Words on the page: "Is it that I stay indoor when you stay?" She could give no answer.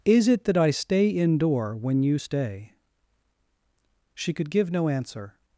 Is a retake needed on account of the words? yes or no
no